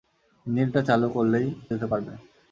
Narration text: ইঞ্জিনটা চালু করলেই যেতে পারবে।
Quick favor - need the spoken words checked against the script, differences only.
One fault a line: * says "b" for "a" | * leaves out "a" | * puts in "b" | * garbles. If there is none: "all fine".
all fine